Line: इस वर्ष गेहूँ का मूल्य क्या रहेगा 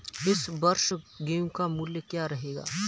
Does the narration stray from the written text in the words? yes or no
no